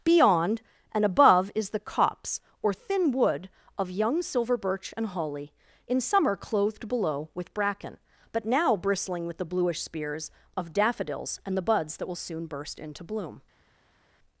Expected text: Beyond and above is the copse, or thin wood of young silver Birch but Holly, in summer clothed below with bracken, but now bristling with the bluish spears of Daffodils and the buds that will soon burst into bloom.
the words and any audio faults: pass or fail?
fail